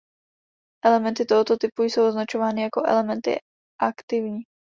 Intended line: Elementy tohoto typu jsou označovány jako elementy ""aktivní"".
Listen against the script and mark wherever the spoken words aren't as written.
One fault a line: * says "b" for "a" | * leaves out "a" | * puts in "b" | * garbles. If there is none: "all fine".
all fine